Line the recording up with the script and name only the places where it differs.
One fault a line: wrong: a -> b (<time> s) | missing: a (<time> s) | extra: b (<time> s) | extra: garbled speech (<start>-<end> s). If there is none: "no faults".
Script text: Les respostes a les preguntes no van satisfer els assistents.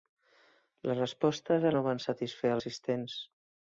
missing: les preguntes (1.8 s)
missing: els (2.5 s)